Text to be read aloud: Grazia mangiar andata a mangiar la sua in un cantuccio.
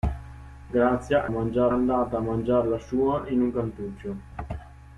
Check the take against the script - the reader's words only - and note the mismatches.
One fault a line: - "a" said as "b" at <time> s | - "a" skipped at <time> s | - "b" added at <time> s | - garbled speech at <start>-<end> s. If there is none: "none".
none